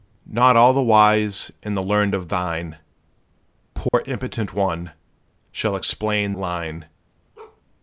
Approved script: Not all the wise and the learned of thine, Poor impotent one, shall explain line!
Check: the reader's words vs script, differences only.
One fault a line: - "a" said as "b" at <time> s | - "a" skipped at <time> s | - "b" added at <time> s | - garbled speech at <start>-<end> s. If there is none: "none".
none